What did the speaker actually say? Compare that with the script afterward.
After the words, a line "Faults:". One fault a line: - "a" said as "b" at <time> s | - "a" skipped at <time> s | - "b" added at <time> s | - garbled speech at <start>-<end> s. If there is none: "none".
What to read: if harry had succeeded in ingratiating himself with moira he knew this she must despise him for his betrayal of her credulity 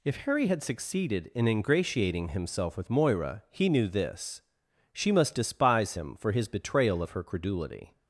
if harry had succeeded in ingratiating himself with moira he knew this she must despise him for his betrayal of her credulity
Faults:
none